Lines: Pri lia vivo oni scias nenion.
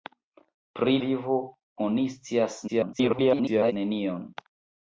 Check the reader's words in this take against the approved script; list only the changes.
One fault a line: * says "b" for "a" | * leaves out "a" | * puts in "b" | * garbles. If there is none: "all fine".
* leaves out "lia"
* garbles